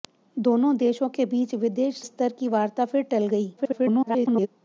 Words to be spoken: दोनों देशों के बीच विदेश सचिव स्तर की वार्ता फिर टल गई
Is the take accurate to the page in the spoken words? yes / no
no